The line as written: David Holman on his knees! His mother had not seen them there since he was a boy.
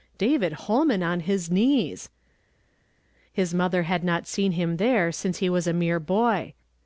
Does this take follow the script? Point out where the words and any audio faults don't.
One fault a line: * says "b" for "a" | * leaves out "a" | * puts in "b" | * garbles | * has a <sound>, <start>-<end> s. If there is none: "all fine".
* says "him" for "them"
* puts in "mere"